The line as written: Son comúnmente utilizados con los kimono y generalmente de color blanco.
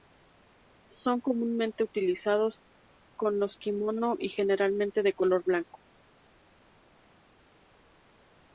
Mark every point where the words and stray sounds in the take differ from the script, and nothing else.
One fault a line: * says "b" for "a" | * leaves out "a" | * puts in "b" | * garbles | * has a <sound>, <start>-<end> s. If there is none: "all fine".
all fine